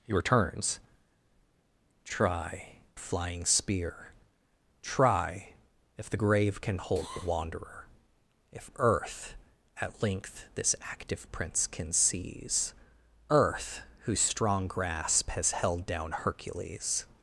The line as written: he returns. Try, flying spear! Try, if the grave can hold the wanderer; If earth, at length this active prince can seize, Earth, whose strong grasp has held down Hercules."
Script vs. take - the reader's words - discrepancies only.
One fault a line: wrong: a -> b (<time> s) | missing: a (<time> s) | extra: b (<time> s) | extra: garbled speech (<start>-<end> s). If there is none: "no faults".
no faults